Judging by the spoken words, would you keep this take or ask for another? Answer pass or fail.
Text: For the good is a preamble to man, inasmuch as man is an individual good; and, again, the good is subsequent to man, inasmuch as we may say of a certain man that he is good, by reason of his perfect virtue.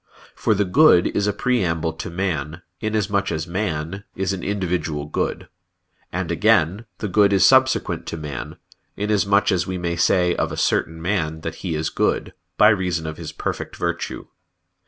pass